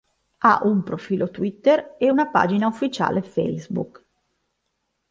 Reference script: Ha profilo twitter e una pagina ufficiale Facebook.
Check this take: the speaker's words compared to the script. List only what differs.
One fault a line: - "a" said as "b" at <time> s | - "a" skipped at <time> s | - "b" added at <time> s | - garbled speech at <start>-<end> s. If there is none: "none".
- "un" added at 0.6 s